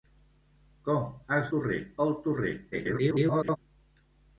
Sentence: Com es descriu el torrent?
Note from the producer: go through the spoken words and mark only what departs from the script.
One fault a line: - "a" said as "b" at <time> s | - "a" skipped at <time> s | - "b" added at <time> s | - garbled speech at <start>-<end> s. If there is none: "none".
- "descriu" said as "torrent" at 1.5 s
- garbled speech at 2.7-3.6 s